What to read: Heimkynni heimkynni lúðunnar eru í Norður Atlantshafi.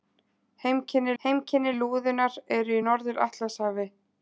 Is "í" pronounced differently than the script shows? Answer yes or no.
no